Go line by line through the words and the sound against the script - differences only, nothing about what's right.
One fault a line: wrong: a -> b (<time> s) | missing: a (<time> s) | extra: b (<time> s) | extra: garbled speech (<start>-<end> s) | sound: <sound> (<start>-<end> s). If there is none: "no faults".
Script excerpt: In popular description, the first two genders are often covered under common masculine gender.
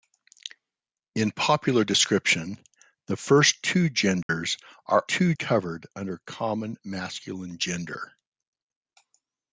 sound: dropout (4.2-4.3 s)
wrong: often -> two (5.1 s)